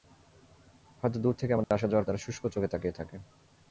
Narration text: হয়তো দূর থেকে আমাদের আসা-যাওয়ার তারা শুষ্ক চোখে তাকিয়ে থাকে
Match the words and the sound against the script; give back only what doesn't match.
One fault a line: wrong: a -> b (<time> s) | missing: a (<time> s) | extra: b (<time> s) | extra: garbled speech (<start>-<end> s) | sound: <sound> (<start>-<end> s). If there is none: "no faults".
sound: dropout (1.6-1.7 s)